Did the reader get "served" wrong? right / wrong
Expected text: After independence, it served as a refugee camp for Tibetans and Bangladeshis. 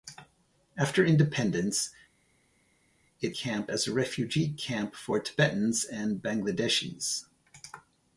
wrong